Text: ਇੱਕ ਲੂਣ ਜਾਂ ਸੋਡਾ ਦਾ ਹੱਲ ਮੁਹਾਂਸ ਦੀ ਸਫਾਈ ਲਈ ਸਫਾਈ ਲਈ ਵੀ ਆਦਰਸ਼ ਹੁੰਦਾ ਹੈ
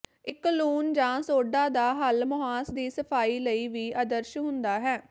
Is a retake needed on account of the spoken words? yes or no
yes